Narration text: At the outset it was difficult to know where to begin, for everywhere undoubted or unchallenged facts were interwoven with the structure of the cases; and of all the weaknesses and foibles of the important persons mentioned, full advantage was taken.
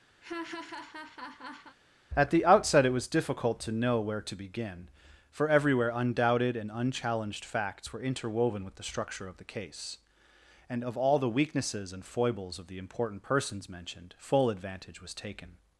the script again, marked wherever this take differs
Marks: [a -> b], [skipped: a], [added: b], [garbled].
At the outset it was difficult to know where to begin, for everywhere undoubted [or -> and] unchallenged facts were interwoven with the structure of the [cases; -> case] and of all the weaknesses and foibles of the important persons mentioned, full advantage was taken.